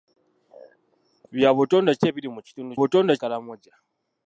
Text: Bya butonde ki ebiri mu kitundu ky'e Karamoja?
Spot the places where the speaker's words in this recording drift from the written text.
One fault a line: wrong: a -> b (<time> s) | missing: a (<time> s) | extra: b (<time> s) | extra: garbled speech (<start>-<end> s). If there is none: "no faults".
wrong: ky'e -> butonde (2.8 s)